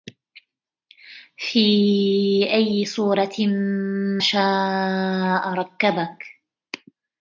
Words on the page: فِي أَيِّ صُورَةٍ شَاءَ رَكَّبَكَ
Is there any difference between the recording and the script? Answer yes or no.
no